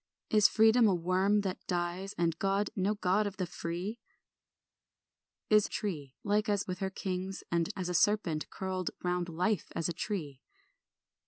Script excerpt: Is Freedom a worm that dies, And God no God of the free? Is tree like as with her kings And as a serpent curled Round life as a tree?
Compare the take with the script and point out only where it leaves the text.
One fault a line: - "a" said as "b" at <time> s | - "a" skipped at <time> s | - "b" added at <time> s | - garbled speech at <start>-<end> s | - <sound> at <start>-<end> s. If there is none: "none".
none